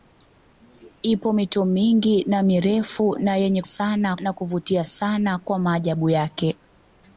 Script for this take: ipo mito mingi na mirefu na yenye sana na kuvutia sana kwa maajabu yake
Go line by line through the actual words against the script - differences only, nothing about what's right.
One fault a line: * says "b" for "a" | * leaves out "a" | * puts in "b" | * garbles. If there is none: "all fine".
all fine